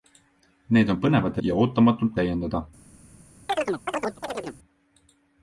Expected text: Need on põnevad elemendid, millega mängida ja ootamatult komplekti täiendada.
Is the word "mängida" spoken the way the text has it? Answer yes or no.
no